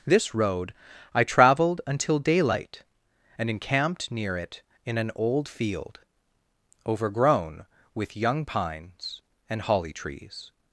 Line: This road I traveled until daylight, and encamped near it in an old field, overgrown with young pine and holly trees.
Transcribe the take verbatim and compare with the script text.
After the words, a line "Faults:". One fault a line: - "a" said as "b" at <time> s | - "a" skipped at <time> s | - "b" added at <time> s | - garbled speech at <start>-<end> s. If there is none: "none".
This road I traveled until daylight, and encamped near it in an old field, overgrown with young pines and holly trees.
Faults:
- "pine" said as "pines" at 8.4 s